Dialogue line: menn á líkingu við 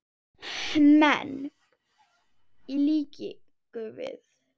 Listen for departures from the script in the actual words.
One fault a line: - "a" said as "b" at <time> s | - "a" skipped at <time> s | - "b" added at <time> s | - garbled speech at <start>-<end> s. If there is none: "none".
- "á" said as "í" at 2.7 s